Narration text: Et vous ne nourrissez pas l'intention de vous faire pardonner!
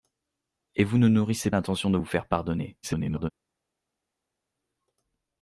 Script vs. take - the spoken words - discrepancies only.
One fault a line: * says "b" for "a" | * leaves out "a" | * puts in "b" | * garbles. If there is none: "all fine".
* leaves out "pas"
* garbles